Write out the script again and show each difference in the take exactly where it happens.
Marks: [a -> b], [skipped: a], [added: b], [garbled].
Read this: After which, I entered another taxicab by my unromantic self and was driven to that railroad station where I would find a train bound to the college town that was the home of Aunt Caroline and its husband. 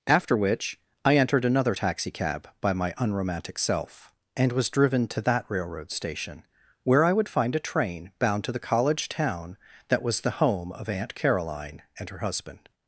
After which, I entered another taxicab by my unromantic self and was driven to that railroad station where I would find a train bound to the college town that was the home of Aunt Caroline and [its -> her] husband.